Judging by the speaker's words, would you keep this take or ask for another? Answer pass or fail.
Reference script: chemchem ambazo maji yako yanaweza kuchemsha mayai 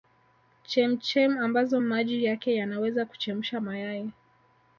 fail